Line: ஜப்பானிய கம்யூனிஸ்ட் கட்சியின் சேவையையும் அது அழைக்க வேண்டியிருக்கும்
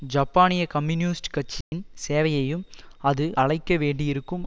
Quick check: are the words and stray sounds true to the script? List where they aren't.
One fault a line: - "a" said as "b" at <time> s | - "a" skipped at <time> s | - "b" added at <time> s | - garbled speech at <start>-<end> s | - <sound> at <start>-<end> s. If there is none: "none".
- dropout at 1.6-1.7 s